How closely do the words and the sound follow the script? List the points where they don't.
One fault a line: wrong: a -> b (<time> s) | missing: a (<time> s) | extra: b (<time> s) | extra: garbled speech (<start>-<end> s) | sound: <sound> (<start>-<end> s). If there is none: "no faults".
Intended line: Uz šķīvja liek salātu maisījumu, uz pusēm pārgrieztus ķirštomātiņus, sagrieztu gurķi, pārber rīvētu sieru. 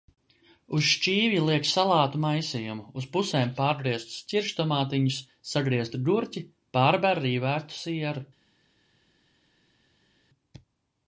no faults